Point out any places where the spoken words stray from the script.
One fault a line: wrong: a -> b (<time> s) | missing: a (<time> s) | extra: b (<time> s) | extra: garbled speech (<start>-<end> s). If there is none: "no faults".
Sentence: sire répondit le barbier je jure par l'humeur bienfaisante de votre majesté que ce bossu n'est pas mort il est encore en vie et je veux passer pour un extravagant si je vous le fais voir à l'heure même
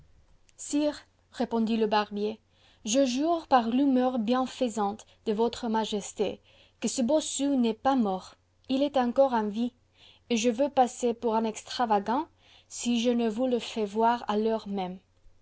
extra: ne (13.1 s)